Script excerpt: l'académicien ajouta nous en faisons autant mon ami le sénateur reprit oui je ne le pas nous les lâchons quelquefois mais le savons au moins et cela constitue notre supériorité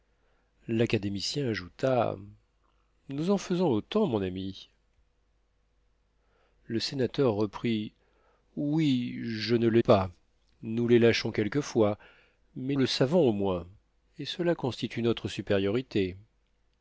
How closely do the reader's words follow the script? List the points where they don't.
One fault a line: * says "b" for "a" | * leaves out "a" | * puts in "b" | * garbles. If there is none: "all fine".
all fine